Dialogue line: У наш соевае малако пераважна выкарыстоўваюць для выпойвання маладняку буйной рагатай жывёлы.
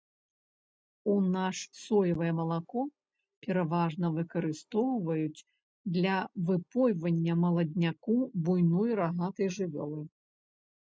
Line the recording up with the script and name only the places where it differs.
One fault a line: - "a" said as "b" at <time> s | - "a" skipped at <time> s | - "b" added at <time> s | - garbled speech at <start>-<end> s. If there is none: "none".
none